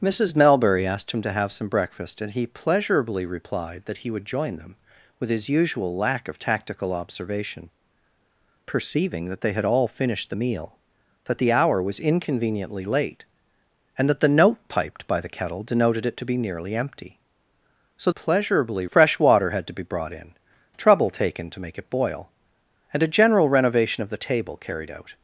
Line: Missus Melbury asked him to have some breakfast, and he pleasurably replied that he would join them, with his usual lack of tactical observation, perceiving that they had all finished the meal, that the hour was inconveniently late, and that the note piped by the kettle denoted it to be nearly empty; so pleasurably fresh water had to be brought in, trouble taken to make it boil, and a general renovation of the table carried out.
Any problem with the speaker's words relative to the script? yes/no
no